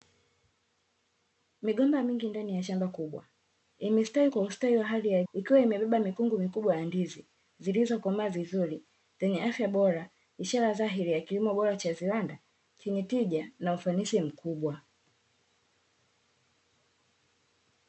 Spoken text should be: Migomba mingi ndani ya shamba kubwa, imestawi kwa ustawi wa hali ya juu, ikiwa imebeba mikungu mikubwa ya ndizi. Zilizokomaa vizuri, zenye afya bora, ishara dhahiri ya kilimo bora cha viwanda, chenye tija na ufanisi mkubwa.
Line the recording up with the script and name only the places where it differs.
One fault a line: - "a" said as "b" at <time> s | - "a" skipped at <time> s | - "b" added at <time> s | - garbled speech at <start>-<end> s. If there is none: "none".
- "juu" skipped at 5.2 s